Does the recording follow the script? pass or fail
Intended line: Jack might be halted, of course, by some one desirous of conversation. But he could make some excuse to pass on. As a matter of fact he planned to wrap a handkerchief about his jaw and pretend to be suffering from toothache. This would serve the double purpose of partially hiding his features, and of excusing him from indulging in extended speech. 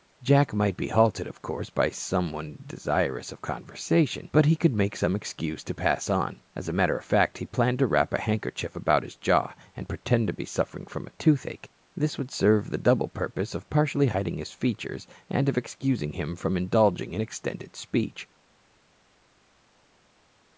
pass